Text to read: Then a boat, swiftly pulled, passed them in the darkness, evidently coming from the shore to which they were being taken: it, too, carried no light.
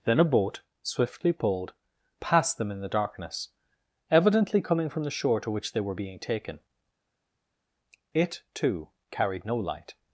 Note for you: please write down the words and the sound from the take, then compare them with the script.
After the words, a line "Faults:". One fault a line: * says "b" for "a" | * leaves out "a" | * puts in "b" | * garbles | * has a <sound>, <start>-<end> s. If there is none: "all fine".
Then a boat, swiftly pulled, passed them in the darkness, evidently coming from the shore to which they were being taken: it, too, carried no light.
Faults:
all fine